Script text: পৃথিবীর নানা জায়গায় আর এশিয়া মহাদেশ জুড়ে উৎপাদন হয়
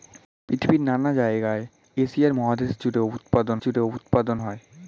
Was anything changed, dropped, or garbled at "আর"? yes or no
yes